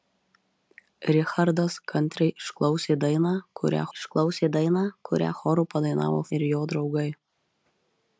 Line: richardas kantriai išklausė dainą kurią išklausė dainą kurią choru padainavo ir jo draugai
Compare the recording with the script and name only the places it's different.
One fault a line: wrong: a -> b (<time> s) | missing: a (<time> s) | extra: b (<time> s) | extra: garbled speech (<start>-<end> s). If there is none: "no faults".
no faults